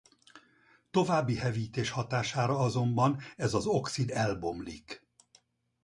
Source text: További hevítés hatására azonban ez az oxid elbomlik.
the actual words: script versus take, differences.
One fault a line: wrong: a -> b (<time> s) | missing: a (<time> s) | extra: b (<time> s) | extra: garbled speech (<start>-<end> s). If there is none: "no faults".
no faults